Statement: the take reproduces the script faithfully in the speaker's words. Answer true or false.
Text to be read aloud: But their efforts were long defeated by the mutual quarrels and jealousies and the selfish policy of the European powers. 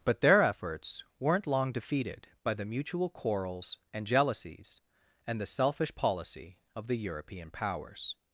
false